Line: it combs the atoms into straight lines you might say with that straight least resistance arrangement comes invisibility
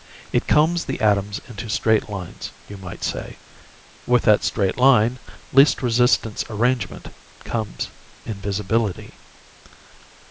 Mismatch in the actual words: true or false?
true